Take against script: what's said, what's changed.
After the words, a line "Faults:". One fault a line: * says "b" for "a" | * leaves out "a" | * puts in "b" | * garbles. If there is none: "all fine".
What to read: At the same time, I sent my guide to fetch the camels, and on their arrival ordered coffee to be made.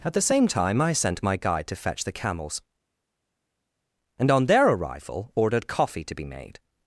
At the same time, I sent my guide to fetch the camels, and on their arrival ordered coffee to be made.
Faults:
all fine